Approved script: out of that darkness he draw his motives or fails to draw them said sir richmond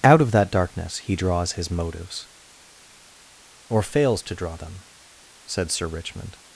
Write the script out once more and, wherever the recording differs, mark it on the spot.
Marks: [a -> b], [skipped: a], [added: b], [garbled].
out of that darkness he [draw -> draws] his motives or fails to draw them said sir richmond